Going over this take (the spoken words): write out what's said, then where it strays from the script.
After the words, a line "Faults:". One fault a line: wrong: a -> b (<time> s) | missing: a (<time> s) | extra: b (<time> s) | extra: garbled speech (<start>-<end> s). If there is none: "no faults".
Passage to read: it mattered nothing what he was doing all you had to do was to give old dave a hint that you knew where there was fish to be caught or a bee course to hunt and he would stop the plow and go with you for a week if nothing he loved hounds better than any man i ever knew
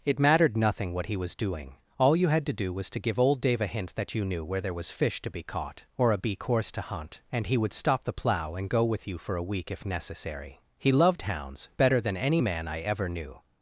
it mattered nothing what he was doing all you had to do was to give old dave a hint that you knew where there was fish to be caught or a bee course to hunt and he would stop the plow and go with you for a week if necessary he loved hounds better than any man i ever knew
Faults:
wrong: nothing -> necessary (9.8 s)